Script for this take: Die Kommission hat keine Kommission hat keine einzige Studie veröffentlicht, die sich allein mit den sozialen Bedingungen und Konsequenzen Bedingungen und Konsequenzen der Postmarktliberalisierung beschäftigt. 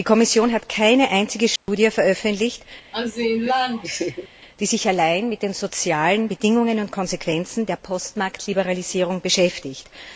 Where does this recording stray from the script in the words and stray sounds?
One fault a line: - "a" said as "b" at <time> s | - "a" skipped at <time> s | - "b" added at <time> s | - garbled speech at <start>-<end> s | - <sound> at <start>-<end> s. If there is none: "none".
- "Kommission hat keine" skipped at 1.1 s
- dropout at 1.6-1.7 s
- laugh at 2.9-4.3 s
- "Bedingungen und Konsequenzen" skipped at 7.6 s